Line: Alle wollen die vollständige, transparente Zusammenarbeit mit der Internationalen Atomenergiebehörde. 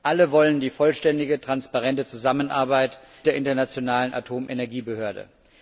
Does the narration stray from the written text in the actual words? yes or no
yes